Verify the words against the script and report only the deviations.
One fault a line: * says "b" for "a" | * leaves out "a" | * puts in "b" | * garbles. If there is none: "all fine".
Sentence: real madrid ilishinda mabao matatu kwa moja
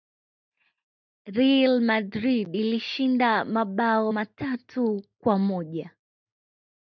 all fine